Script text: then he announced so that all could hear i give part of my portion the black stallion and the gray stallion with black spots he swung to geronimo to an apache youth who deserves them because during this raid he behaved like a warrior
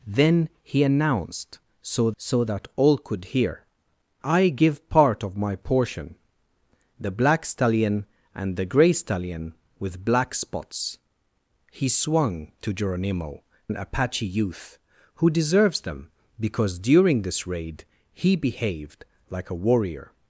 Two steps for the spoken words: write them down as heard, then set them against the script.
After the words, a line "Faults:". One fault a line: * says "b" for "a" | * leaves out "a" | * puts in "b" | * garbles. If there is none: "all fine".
then he announced so so that all could hear i give part of my portion the black stallion and the gray stallion with black spots he swung to geronimo an apache youth who deserves them because during this raid he behaved like a warrior
Faults:
* puts in "so"
* leaves out "to"